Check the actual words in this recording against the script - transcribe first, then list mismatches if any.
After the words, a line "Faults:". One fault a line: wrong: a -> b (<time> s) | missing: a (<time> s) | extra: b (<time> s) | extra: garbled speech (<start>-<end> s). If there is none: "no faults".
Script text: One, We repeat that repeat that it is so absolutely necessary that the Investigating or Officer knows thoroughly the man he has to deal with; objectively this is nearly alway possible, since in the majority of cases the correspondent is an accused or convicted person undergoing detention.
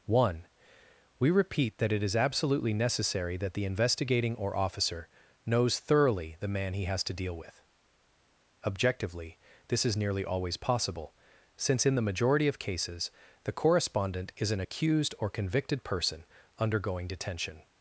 One, We repeat that it is absolutely necessary that the Investigating or Officer knows thoroughly the man he has to deal with; objectively this is nearly always possible, since in the majority of cases the correspondent is an accused or convicted person undergoing detention.
Faults:
missing: repeat that (1.9 s)
missing: so (2.1 s)
wrong: alway -> always (10.2 s)